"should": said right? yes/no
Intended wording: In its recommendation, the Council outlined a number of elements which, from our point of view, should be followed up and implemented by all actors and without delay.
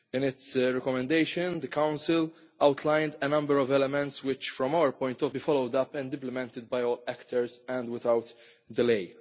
no